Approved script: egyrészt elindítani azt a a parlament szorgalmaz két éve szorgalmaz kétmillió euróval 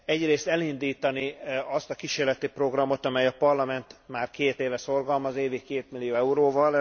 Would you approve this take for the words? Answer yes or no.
no